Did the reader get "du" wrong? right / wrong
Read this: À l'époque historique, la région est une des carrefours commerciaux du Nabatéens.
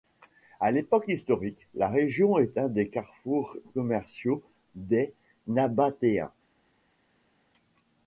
wrong